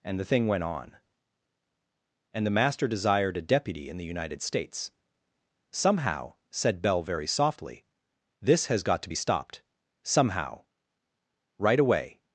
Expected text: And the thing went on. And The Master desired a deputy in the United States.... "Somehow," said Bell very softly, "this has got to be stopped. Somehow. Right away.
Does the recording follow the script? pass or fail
pass